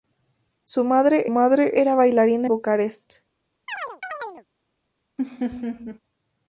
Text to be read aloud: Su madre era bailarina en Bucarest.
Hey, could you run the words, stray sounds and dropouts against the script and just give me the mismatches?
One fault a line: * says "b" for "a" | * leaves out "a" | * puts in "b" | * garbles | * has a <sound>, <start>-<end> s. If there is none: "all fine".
* puts in "madre"
* leaves out "en"
* has a chirp, 3.7-4.5 s
* has a laugh, 5.2-6.0 s